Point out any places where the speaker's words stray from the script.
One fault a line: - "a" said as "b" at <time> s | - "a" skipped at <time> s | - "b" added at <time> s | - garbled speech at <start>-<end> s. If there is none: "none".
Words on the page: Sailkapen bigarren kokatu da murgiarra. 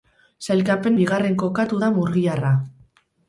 none